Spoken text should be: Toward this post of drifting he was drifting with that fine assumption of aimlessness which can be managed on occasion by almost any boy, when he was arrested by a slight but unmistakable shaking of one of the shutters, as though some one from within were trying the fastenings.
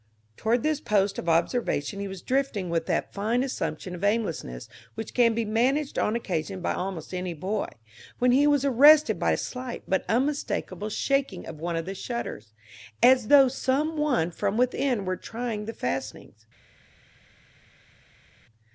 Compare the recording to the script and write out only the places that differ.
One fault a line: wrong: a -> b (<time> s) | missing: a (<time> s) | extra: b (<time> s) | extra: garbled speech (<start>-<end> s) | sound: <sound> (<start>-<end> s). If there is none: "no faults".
wrong: drifting -> observation (1.3 s)